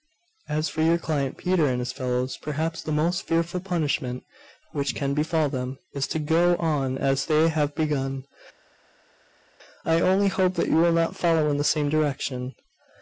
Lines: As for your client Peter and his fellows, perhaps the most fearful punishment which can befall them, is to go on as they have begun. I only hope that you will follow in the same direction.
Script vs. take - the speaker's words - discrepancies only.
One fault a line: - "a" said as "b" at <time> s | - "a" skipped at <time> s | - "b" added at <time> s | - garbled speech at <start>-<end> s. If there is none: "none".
- "not" added at 10.9 s